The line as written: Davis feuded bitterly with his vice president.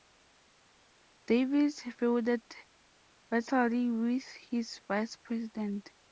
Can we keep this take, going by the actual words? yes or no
yes